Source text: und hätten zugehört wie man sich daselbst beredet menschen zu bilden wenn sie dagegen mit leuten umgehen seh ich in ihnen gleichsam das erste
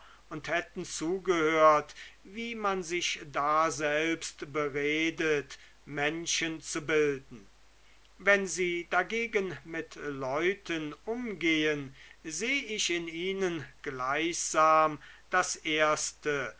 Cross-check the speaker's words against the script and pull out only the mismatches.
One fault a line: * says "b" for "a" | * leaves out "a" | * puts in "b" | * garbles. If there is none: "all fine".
all fine